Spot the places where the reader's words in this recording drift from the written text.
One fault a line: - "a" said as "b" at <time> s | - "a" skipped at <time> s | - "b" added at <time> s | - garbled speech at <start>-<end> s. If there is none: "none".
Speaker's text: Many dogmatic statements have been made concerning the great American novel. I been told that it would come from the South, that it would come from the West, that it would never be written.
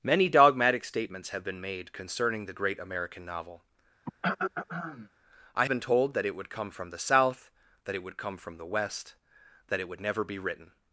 none